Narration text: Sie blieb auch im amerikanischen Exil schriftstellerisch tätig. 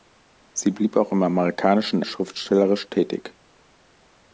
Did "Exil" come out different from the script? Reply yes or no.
yes